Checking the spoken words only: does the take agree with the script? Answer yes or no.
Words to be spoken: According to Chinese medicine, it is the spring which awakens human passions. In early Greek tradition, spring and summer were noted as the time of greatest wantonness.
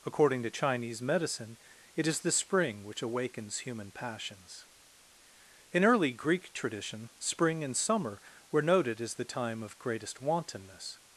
yes